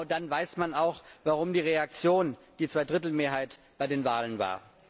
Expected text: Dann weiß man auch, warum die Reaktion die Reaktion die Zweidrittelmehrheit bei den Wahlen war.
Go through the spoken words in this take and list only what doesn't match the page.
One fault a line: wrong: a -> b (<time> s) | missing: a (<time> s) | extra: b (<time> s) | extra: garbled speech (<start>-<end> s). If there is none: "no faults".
missing: Reaktion die (2.7 s)